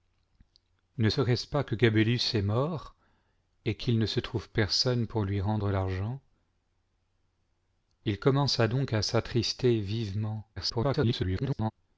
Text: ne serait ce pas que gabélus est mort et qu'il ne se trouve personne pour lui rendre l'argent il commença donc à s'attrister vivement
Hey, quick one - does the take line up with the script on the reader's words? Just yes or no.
no